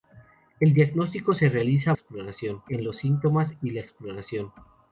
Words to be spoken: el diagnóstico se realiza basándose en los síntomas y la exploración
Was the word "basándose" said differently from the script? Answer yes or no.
yes